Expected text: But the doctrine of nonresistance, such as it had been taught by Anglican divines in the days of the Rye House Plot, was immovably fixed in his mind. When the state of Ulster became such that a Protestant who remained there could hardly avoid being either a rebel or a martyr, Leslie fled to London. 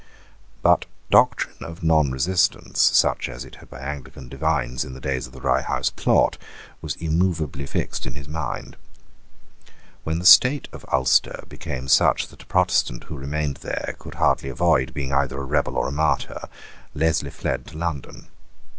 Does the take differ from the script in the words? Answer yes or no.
yes